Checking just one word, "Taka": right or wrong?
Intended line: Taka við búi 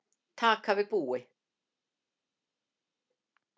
right